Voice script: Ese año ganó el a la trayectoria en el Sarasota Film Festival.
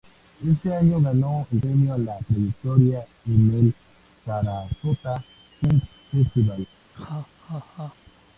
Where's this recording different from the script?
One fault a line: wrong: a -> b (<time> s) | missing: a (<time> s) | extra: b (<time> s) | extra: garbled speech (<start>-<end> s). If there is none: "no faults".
extra: premio (1.6 s)